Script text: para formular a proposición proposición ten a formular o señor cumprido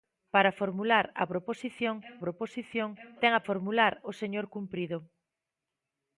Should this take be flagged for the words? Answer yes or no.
no